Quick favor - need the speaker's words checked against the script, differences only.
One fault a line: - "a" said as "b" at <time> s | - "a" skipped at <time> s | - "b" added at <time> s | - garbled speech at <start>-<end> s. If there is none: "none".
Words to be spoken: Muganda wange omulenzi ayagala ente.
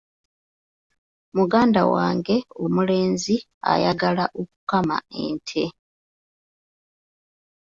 - "okukama" added at 4.4 s